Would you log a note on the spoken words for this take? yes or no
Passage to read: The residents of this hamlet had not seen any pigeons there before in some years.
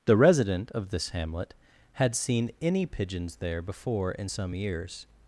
yes